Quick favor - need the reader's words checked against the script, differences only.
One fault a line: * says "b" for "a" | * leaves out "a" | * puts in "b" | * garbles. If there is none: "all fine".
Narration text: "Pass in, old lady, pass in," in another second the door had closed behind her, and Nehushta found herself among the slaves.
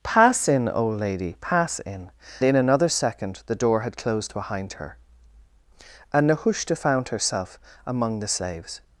all fine